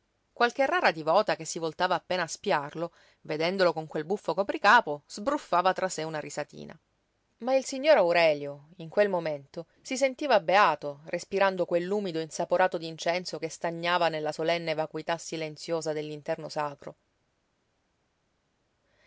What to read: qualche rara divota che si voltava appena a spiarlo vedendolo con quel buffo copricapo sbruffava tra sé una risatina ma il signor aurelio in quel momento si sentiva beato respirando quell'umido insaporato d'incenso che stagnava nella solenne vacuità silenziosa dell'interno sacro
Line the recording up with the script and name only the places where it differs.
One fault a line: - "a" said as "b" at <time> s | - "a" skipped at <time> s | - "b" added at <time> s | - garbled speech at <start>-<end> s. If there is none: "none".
none